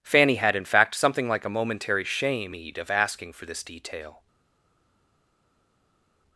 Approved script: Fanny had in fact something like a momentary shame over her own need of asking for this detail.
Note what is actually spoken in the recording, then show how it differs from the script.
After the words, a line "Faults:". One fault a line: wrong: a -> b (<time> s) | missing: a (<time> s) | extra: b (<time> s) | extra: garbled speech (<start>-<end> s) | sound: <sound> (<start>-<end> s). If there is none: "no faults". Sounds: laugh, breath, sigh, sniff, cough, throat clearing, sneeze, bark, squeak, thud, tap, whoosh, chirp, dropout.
Fanny had in fact something like a momentary shame need of asking for this detail.
Faults:
missing: over her own (2.5 s)